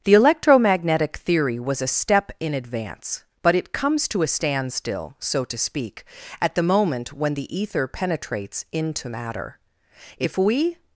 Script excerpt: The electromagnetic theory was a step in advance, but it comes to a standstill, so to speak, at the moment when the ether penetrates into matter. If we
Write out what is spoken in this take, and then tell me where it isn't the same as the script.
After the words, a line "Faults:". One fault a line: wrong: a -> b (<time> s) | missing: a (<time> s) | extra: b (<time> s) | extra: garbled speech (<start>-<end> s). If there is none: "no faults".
The electromagnetic theory was a step in advance, but it comes to a standstill, so to speak, at the moment when the ether penetrates into matter. If we
Faults:
no faults